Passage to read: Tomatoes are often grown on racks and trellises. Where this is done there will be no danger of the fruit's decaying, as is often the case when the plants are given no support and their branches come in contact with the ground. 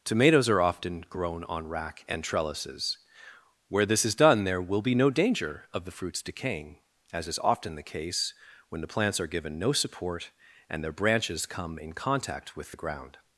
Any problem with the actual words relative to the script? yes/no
yes